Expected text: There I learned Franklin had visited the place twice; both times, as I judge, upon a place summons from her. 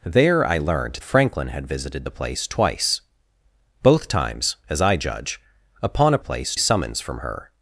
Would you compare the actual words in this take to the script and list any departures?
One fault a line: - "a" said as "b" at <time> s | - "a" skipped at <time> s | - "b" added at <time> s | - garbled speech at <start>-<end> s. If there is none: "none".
none